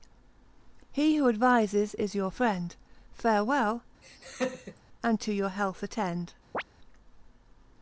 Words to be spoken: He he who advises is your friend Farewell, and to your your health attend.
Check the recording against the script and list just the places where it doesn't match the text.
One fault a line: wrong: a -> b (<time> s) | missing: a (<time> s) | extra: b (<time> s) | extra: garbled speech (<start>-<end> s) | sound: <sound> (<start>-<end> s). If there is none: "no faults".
missing: he (1.2 s)
sound: laugh (4.0-4.8 s)
missing: your (5.5 s)
sound: chirp (6.5-6.6 s)